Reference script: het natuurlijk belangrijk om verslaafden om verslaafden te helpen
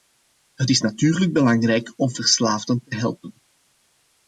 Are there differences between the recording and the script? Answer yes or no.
yes